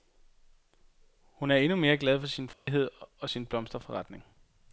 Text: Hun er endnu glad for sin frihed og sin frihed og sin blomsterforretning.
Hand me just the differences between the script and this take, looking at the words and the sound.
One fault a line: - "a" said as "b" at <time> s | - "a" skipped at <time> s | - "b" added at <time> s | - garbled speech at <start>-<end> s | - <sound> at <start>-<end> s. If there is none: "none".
- "mere" added at 1.8 s
- dropout at 2.5-2.7 s
- "frihed og sin" skipped at 3.5 s